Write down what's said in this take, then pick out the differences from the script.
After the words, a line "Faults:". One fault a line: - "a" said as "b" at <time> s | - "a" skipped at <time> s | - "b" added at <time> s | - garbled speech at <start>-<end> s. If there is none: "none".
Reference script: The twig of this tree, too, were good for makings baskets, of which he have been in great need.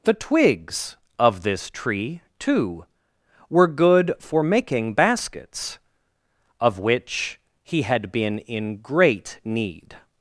The twigs of this tree, too, were good for making baskets, of which he had been in great need.
Faults:
- "twig" said as "twigs" at 0.1 s
- "makings" said as "making" at 4.4 s
- "have" said as "had" at 7.8 s